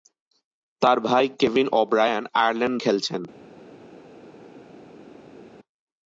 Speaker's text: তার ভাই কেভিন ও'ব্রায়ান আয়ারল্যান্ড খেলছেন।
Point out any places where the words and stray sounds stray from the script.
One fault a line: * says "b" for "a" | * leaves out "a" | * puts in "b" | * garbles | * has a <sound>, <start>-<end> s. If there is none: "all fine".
all fine